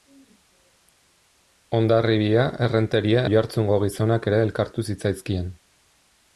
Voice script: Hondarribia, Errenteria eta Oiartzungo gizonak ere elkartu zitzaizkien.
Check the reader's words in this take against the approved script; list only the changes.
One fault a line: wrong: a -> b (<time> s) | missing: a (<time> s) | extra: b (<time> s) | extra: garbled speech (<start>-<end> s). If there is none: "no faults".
missing: eta (3.2 s)